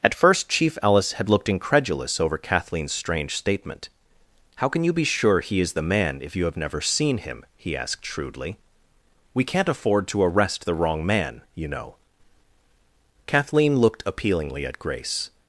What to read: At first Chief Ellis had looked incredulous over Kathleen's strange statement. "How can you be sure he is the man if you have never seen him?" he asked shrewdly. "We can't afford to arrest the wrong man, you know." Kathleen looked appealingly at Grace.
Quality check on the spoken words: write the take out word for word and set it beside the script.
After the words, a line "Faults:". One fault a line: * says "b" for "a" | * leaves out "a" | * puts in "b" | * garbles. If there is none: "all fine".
At first Chief Ellis had looked incredulous over Kathleen's strange statement. "How can you be sure he is the man if you have never seen him?" he asked shrewdly. "We can't afford to arrest the wrong man, you know." Kathleen looked appealingly at Grace.
Faults:
all fine